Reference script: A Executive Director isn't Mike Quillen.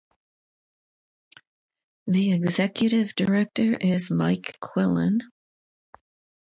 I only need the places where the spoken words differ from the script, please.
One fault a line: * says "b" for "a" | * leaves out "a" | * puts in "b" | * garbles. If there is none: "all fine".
* says "The" for "A"
* says "is" for "isn't"